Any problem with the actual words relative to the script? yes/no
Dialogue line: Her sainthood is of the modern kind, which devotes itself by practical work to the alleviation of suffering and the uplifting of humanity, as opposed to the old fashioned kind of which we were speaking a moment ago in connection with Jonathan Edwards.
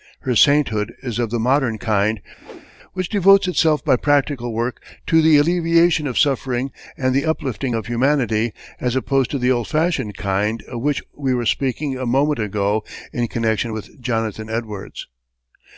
no